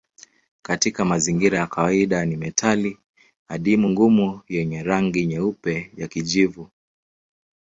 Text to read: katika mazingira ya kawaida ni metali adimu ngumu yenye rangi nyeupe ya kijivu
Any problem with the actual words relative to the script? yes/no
no